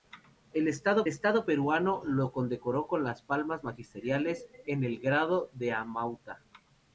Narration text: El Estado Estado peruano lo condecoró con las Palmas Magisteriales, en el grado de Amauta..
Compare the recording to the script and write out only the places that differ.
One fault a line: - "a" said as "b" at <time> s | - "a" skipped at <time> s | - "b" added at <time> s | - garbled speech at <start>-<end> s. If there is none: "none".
none